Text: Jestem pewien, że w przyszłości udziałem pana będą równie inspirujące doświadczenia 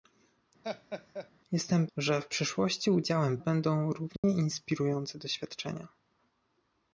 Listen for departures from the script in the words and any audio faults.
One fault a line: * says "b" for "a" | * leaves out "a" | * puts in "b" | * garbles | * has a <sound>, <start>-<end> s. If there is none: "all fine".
* has a laugh, 0.6-1.3 s
* leaves out "pewien"
* leaves out "pana"
* has a dropout, 4.2-4.2 s